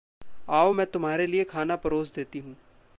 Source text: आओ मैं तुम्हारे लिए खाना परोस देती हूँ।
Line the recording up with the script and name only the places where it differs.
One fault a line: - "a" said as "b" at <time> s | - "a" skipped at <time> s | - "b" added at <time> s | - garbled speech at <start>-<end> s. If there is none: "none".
none